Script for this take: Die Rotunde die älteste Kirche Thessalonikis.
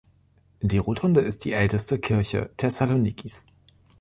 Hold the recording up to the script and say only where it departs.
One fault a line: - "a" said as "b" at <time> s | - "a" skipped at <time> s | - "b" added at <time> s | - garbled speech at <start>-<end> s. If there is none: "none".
- "ist" added at 1.2 s